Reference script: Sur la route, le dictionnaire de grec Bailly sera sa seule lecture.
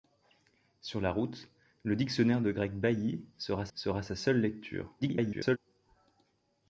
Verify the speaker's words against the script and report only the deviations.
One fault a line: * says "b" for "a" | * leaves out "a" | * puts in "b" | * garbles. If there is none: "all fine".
* puts in "sera"
* garbles